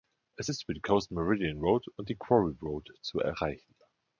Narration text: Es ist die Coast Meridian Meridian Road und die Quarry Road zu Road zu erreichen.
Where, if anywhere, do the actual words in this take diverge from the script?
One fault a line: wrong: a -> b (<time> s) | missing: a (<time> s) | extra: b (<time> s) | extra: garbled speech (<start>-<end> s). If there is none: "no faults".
extra: über (0.6 s)
missing: Meridian (1.6 s)
missing: Road zu (3.2 s)